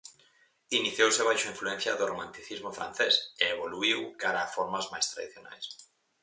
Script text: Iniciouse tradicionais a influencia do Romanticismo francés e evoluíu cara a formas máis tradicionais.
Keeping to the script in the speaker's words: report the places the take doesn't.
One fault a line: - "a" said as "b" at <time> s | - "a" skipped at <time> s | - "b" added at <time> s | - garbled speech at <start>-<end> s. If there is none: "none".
- "tradicionais" said as "baixo" at 1.3 s